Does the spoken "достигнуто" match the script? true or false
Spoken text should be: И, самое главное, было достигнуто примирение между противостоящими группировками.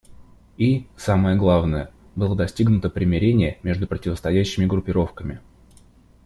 true